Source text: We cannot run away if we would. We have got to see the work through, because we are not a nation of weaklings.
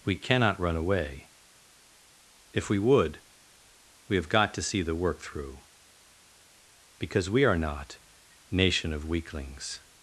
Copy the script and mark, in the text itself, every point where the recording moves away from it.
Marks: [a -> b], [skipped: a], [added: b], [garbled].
We cannot run away if we would. We have got to see the work through, because we are not [skipped: a] nation of weaklings.